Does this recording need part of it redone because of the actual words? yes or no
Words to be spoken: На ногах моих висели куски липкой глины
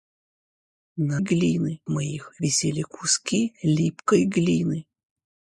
yes